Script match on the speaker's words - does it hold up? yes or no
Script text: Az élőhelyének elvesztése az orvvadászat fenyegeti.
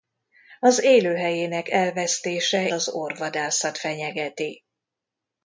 yes